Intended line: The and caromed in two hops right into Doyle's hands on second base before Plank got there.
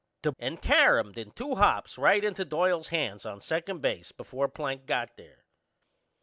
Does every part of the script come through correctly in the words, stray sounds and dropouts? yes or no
yes